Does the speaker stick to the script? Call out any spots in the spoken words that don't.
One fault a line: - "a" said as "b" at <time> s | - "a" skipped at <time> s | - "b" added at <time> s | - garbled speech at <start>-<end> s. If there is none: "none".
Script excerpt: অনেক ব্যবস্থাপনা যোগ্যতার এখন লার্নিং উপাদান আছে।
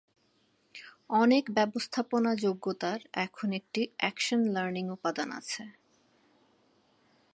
- "একটি অ্যাকশন" added at 3.5 s